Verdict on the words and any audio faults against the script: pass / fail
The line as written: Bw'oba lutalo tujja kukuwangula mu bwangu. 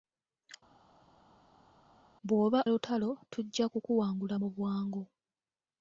pass